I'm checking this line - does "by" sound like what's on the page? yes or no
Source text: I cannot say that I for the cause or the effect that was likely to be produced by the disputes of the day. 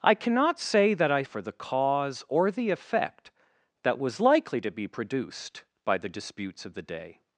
yes